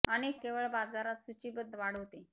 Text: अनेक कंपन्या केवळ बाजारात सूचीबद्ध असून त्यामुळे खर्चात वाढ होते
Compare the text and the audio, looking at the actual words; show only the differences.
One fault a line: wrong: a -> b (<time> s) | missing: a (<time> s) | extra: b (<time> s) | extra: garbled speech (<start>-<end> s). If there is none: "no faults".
missing: कंपन्या (0.4 s)
missing: असून त्यामुळे खर्चात (1.8 s)